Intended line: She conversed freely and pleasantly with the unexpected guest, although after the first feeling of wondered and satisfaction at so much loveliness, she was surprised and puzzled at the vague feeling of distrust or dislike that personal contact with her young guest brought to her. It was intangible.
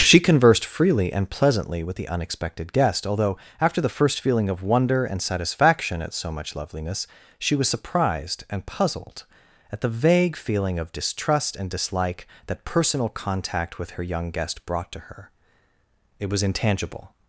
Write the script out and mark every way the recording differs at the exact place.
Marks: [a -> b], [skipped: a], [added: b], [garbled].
She conversed freely and pleasantly with the unexpected guest, although after the first feeling of [wondered -> wonder] and satisfaction at so much loveliness, she was surprised and puzzled at the vague feeling of distrust [or -> and] dislike that personal contact with her young guest brought to her. It was intangible.